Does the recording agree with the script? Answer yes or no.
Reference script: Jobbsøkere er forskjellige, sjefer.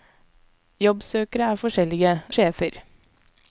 yes